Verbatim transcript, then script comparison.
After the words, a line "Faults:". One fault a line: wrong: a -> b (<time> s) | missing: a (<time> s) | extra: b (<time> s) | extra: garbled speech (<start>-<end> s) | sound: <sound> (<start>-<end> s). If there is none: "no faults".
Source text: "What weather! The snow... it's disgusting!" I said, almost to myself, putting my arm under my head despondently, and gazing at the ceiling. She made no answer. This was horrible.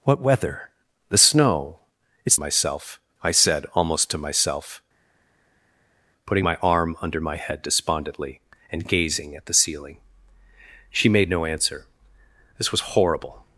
"What weather! The snow... it's myself!" I said, almost to myself, putting my arm under my head despondently, and gazing at the ceiling. She made no answer. This was horrible.
Faults:
wrong: disgusting -> myself (2.3 s)